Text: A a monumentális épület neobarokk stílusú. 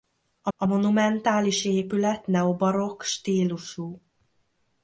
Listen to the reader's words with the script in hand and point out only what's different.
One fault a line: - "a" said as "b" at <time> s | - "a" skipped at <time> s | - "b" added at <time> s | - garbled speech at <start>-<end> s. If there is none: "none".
none